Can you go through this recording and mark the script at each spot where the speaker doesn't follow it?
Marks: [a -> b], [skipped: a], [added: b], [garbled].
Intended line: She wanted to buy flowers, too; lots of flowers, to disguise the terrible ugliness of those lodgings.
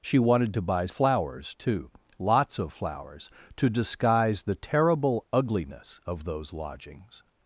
She wanted to buy flowers, too; lots of flowers, to disguise the terrible ugliness of those lodgings.